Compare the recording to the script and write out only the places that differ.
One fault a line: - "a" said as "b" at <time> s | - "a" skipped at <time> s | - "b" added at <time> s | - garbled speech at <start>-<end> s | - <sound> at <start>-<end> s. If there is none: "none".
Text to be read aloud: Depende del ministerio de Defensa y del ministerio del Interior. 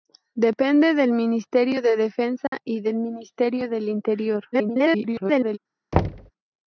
- dropout at 2.5-2.5 s
- garbled speech at 4.5-5.6 s
- thud at 5.9-6.3 s